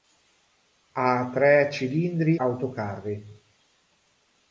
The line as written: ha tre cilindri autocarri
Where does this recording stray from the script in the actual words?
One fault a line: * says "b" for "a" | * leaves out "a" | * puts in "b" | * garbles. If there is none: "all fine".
all fine